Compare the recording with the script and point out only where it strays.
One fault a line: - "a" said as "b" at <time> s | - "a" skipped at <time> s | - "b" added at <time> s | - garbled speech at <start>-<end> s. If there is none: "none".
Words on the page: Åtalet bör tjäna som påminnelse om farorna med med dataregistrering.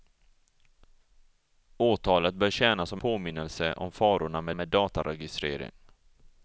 none